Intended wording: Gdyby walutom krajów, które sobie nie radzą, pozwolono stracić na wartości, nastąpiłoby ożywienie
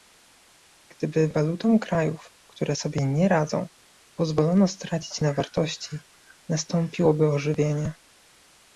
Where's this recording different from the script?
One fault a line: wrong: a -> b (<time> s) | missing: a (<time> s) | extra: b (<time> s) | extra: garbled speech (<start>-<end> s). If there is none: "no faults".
no faults